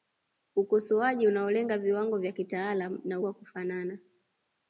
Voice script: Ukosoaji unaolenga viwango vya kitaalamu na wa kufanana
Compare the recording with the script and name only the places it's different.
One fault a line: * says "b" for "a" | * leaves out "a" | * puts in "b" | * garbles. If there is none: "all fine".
all fine